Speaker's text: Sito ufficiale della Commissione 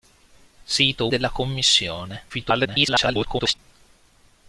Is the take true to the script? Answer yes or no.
no